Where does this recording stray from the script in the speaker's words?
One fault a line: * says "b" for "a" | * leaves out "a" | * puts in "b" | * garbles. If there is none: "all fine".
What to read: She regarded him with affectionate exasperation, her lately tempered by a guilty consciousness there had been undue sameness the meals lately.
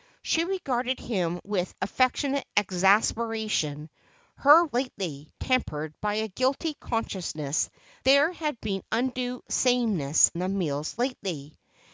all fine